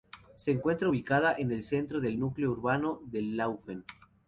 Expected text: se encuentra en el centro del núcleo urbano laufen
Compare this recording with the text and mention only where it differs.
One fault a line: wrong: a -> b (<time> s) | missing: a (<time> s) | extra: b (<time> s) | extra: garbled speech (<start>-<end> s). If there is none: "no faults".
extra: ubicada (0.9 s)
extra: de (3.0 s)